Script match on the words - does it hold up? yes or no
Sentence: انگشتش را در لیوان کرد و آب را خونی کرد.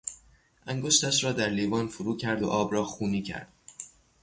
no